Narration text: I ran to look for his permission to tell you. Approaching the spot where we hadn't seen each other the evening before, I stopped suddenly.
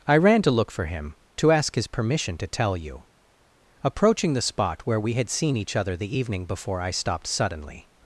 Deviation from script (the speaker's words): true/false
true